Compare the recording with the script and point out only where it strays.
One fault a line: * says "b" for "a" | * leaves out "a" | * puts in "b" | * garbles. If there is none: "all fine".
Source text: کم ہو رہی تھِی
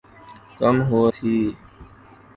* leaves out "رہی"